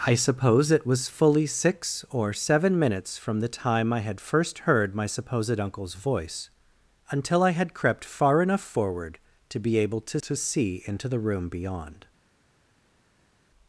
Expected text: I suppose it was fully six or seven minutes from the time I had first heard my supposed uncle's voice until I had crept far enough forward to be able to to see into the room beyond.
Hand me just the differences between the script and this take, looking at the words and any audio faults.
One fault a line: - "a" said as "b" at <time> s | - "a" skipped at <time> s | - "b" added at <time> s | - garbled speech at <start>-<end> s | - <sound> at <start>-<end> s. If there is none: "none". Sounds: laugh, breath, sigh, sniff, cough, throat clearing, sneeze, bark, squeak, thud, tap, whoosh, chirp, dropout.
none